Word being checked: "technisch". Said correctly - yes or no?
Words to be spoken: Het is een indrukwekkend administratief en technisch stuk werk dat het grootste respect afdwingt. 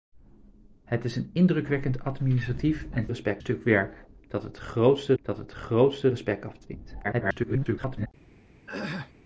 no